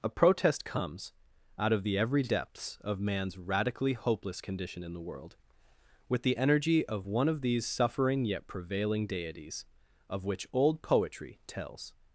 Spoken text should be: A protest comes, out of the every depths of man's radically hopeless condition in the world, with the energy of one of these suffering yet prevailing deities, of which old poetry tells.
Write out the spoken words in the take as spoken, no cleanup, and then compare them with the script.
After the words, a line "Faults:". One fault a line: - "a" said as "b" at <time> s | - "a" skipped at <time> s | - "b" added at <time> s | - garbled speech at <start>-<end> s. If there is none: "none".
A protest comes, out of the every depths of man's radically hopeless condition in the world, with the energy of one of these suffering yet prevailing deities, of which old poetry tells.
Faults:
none